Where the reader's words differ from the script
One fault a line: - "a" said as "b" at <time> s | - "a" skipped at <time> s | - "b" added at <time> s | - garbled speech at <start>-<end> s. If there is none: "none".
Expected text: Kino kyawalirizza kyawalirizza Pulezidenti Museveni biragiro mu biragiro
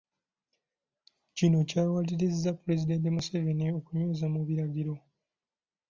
- "kyawalirizza" skipped at 2.5 s
- "biragiro" said as "okunyweza" at 3.8 s